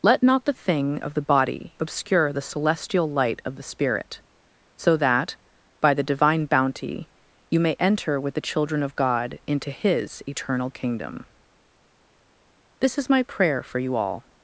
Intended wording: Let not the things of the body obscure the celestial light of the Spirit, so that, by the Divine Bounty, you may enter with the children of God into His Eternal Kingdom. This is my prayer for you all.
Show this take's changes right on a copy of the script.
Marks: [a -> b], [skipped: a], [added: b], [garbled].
Let not the [things -> thing] of the body obscure the celestial light of the Spirit, so that, by the Divine Bounty, you may enter with the children of God into His Eternal Kingdom. This is my prayer for you all.